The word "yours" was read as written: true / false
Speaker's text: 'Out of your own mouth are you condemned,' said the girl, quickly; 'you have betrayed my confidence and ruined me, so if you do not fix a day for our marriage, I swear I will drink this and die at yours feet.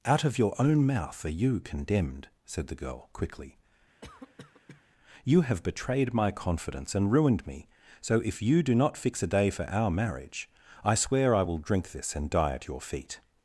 false